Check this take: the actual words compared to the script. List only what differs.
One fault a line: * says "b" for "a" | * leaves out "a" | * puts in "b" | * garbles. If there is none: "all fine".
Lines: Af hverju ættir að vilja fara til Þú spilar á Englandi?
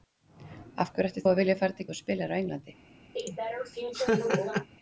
all fine